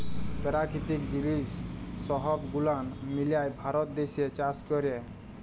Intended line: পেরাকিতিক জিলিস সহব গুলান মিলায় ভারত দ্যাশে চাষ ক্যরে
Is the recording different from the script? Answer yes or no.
no